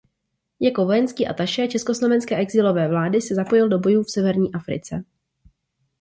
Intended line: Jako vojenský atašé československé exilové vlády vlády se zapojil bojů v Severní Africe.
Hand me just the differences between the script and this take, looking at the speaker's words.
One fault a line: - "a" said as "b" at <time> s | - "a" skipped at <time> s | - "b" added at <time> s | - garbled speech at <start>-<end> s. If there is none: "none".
- "vlády" skipped at 3.2 s
- "do" added at 3.7 s